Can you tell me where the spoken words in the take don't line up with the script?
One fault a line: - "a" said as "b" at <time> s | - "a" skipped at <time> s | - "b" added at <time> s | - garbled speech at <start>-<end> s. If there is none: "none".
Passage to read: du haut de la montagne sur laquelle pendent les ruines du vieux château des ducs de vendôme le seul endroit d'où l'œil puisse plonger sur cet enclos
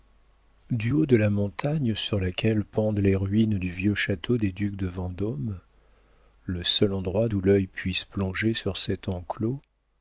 none